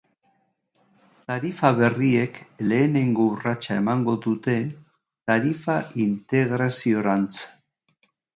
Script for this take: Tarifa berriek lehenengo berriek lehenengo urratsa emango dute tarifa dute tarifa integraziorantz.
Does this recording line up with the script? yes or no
no